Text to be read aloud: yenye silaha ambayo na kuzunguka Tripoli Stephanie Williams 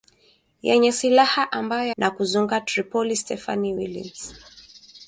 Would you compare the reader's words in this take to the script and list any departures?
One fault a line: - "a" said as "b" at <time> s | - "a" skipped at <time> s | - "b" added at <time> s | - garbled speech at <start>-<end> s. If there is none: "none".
none